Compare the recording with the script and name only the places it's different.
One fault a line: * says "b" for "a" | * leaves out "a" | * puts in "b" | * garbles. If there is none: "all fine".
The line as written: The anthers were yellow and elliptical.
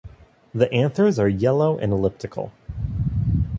* says "are" for "were"